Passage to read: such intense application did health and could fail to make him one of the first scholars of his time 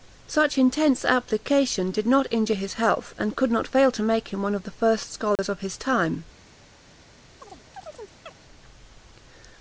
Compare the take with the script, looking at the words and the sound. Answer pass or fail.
fail